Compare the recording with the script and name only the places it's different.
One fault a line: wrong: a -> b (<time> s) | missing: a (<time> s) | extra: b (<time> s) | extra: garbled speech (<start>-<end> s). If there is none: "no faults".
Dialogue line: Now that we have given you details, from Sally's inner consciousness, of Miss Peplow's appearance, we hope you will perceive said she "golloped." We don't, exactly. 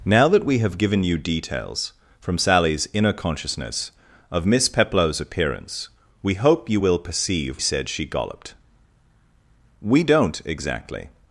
no faults